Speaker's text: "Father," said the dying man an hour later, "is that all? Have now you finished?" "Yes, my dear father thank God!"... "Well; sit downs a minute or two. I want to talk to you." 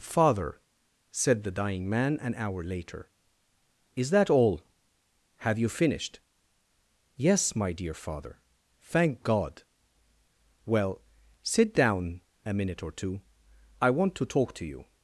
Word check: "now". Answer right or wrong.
wrong